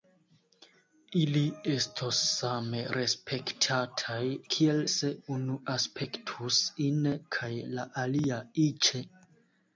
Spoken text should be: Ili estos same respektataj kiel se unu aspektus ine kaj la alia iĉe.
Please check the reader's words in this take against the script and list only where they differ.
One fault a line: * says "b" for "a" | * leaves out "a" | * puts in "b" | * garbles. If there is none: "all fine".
all fine